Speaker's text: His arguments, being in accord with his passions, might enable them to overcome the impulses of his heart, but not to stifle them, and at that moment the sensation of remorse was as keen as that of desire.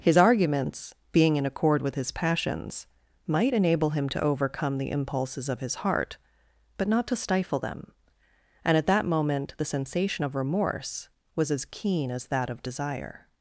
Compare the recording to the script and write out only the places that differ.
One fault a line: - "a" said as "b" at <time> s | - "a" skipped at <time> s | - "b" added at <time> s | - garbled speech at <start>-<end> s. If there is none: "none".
- "them" said as "him" at 3.9 s